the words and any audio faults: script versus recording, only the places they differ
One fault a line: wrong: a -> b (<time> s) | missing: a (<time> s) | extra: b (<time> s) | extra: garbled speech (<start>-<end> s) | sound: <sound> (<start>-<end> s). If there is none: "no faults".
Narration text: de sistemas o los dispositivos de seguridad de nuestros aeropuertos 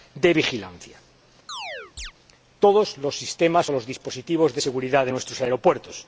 extra: vigilancia todos los (0.3 s)
sound: chirp (1.5-2.1 s)